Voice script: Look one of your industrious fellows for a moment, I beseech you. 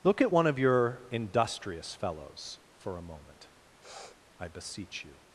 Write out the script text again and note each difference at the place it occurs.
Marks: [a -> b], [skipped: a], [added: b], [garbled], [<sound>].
Look [added: at] one of your industrious fellows for a moment, [sniff] I beseech you.